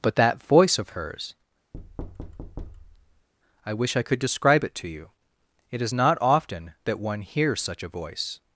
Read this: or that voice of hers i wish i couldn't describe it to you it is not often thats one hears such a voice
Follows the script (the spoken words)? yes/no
no